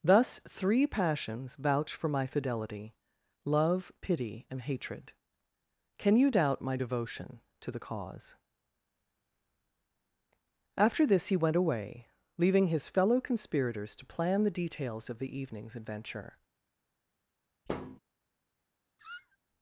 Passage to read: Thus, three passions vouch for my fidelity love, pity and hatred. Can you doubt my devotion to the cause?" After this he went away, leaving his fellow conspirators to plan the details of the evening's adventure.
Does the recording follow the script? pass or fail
pass